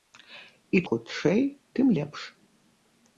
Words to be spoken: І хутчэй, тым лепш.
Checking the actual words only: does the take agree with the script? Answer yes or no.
yes